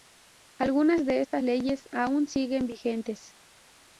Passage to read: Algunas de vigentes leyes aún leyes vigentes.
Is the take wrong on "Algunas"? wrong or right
right